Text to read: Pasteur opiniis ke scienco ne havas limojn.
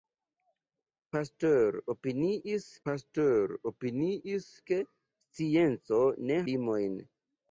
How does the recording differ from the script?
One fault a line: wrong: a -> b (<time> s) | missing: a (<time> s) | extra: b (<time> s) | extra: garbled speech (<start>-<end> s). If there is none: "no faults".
extra: pasteur opiniis (2.9 s)
missing: havas (6.4 s)